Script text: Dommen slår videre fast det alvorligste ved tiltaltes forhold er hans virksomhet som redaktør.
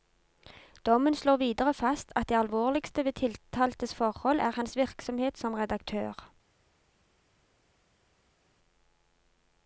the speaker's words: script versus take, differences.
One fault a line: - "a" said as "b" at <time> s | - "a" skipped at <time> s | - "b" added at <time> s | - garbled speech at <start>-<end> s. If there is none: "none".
- "at" added at 2.1 s